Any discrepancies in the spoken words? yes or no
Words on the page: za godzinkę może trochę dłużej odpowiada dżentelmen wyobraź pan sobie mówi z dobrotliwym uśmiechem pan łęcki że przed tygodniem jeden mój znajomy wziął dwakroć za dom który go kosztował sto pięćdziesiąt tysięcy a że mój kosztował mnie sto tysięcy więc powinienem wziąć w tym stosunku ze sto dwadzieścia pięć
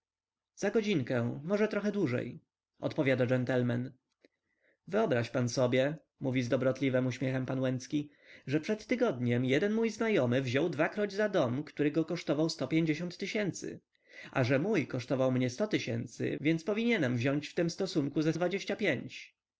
yes